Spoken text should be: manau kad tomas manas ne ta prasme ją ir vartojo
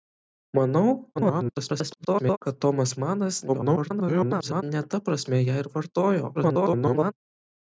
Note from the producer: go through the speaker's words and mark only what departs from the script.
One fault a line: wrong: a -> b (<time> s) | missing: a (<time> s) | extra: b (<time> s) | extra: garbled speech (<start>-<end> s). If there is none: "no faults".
extra: garbled speech (1.2-2.4 s)
extra: garbled speech (3.5-4.6 s)
extra: garbled speech (6.3-7.1 s)